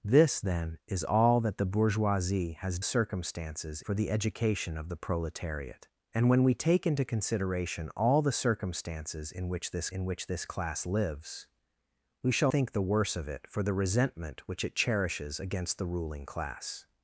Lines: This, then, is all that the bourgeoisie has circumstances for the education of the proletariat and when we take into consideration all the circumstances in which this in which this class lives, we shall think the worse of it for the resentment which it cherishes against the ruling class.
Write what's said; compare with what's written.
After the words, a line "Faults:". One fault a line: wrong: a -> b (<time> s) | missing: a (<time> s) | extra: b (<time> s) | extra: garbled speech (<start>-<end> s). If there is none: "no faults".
This, then, is all that the bourgeoisie has circumstances for the education of the proletariat and when we take into consideration all the circumstances in which this in which this class lives, we shall think the worse of it for the resentment which it cherishes against the ruling class.
Faults:
no faults